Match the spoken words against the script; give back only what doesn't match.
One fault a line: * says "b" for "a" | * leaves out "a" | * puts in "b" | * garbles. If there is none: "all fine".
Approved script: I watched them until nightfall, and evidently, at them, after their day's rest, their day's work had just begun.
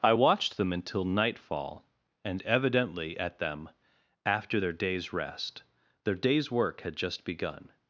all fine